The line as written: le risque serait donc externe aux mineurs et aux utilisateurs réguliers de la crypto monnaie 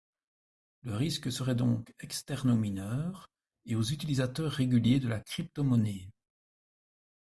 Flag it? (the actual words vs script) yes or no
no